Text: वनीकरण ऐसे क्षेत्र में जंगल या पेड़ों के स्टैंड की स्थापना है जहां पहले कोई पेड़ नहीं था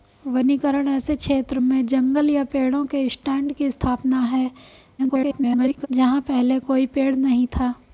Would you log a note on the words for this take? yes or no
yes